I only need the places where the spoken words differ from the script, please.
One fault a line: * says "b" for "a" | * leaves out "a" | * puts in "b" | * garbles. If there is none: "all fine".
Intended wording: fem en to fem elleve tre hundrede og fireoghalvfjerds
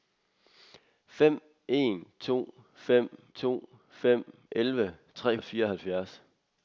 * puts in "to fem"
* leaves out "hundrede"